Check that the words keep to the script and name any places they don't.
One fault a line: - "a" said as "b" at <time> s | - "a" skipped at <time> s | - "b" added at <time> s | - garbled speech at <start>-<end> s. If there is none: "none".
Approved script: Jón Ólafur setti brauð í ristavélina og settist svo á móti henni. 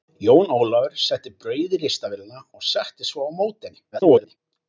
- garbled speech at 3.9-4.4 s